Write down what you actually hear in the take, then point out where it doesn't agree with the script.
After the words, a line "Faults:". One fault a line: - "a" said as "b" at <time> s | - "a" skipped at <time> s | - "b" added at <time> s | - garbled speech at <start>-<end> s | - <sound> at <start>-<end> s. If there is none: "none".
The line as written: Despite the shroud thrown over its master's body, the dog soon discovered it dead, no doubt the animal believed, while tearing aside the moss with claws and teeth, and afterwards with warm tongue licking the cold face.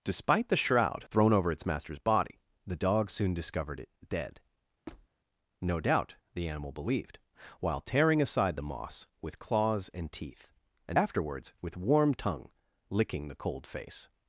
Despite the shroud thrown over its master's body, the dog soon discovered it dead, no doubt the animal believed, while tearing aside the moss with claws and teeth, and afterwards with warm tongue licking the cold face.
Faults:
- squeak at 4.9-5.1 s